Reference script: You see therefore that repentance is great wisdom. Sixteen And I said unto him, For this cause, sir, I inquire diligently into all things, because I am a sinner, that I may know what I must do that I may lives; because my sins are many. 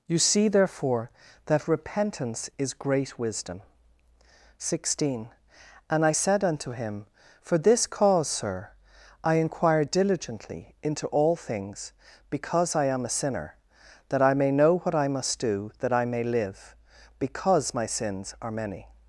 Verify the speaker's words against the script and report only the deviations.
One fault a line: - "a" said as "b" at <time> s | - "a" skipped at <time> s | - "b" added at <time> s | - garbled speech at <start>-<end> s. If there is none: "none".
- "lives" said as "live" at 16.2 s